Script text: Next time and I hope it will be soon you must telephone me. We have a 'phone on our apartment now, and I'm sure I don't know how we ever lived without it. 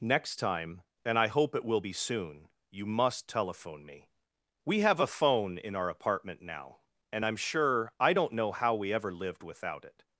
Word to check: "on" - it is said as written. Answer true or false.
false